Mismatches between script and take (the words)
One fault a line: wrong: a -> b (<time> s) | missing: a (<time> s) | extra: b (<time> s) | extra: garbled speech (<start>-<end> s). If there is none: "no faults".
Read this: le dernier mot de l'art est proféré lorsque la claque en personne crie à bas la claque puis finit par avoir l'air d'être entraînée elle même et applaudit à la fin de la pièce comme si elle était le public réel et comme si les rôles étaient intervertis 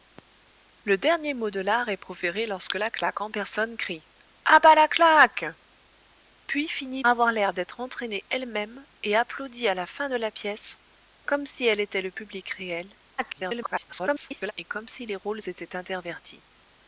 missing: par (7.0 s)
extra: garbled speech (13.2-14.5 s)